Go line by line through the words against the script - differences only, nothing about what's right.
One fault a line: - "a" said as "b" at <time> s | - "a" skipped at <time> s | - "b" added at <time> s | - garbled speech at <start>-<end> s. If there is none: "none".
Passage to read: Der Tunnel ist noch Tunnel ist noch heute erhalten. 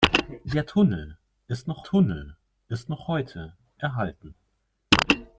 none